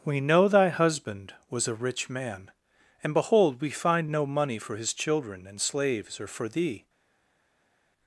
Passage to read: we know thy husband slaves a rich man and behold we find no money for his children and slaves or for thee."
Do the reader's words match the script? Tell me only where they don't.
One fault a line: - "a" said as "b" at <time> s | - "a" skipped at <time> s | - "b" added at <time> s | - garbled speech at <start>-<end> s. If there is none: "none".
- "slaves" said as "was" at 1.5 s